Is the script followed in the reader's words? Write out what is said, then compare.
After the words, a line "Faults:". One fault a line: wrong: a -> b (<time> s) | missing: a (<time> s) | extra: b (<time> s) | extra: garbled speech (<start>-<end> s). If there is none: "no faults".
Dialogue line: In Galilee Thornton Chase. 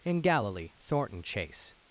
In Galilee Thornton Chase.
Faults:
no faults